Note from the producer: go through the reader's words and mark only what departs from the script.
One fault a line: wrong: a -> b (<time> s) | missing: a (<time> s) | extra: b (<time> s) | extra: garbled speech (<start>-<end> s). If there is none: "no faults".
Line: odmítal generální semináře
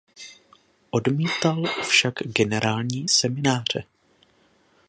extra: však (1.8 s)